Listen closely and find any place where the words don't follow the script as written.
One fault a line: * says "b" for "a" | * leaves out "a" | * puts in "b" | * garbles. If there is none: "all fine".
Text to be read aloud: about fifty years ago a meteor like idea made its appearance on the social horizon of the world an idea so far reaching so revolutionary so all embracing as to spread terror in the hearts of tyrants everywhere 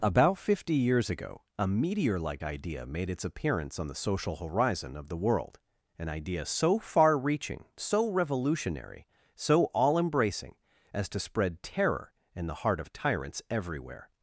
* says "heart" for "hearts"